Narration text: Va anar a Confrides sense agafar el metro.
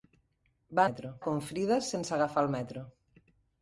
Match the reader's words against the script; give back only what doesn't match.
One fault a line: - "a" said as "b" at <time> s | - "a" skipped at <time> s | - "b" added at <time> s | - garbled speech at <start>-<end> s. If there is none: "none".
- "anar" said as "metro" at 0.9 s